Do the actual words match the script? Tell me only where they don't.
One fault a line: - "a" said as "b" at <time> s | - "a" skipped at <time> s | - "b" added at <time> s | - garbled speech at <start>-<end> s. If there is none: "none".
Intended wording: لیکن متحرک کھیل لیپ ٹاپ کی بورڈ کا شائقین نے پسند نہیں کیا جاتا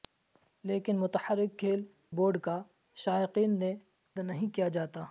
- "لیپ ٹاپ کی" skipped at 1.8 s
- "پسند" skipped at 3.7 s